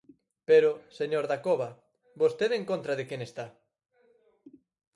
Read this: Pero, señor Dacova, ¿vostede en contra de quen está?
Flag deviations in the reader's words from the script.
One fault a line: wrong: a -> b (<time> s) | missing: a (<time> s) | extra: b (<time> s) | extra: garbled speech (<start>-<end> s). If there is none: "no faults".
no faults